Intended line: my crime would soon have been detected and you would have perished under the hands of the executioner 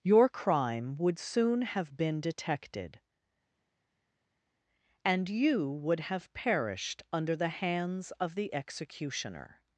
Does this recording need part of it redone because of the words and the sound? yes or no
yes